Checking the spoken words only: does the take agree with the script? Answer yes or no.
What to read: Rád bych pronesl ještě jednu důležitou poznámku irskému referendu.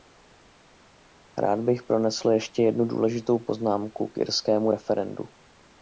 no